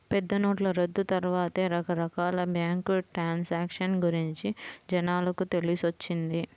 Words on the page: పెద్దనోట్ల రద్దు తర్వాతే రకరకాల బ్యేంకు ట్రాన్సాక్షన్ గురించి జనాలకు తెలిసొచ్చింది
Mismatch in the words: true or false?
false